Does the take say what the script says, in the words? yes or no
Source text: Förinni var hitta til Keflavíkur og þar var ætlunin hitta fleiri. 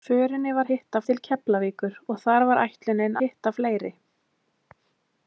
yes